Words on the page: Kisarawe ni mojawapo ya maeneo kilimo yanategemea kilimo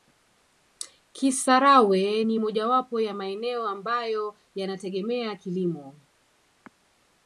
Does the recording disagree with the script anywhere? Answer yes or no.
yes